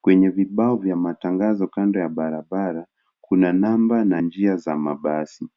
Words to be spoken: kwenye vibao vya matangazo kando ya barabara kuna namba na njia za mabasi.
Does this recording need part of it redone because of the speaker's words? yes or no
no